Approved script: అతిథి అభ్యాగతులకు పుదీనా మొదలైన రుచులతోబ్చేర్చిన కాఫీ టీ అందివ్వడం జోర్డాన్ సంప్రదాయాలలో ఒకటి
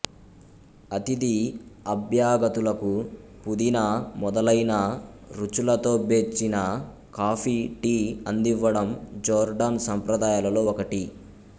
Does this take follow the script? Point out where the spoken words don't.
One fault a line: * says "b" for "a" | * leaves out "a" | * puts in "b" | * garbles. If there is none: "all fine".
all fine